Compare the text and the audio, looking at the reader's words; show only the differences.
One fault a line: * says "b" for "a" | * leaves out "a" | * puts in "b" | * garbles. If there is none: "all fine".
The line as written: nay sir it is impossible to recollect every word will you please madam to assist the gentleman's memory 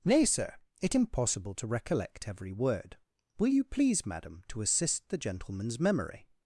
* leaves out "is"